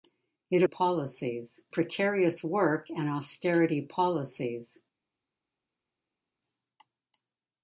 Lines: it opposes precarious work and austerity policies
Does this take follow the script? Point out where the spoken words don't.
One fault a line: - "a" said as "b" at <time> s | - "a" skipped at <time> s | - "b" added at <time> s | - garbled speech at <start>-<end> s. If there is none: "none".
- "opposes" said as "policies" at 0.6 s